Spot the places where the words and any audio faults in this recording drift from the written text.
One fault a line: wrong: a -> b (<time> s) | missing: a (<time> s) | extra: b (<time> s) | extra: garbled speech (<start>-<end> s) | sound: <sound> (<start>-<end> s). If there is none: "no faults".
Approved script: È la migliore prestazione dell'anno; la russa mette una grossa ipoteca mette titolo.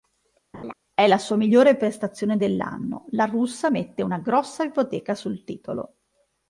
sound: laugh (0.5-0.7 s)
extra: sua (1.2 s)
wrong: mette -> sul (5.2 s)